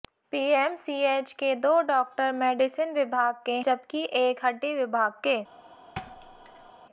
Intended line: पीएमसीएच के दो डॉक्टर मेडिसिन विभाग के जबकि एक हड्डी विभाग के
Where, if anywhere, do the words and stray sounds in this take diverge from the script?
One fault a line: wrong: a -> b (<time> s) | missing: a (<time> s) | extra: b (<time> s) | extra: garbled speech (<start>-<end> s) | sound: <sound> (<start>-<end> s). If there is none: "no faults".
sound: thud (6.0-6.7 s)